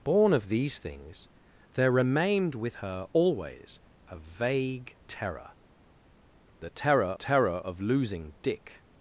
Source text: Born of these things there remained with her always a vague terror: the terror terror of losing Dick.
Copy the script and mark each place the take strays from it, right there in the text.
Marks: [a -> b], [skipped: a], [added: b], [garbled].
Born of these things there remained with her always a vague terror: the terror terror of losing Dick.